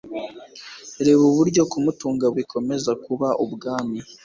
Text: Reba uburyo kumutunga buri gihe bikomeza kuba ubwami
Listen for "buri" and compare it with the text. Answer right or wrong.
wrong